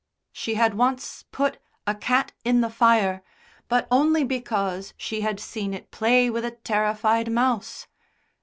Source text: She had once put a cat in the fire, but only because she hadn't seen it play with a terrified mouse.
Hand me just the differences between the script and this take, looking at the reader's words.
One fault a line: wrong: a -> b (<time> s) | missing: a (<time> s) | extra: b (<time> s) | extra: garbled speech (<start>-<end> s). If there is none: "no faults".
wrong: hadn't -> had (5.2 s)